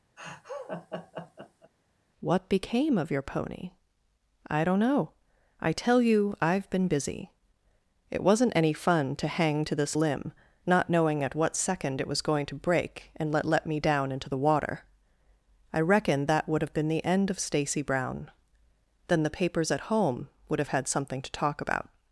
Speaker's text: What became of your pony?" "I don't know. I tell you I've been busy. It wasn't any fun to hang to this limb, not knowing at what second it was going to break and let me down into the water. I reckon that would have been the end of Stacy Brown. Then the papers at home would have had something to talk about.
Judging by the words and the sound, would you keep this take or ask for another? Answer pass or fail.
fail